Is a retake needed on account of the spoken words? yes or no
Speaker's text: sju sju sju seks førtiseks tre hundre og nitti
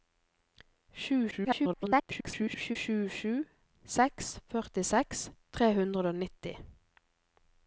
yes